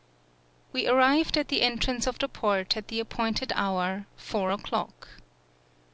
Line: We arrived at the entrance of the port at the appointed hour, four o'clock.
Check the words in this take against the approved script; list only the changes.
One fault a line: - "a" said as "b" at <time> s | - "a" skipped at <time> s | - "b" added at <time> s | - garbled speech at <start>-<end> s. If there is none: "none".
none